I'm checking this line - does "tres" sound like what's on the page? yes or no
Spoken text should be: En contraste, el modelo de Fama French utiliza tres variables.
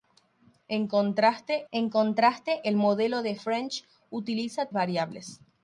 no